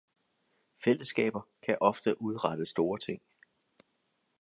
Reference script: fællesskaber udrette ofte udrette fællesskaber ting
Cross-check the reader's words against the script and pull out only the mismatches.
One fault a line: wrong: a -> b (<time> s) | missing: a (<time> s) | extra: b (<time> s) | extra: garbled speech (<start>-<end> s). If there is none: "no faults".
wrong: udrette -> kan (1.6 s)
wrong: fællesskaber -> store (2.6 s)